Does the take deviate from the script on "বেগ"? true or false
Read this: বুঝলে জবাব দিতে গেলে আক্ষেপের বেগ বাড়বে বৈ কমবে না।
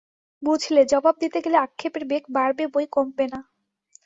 false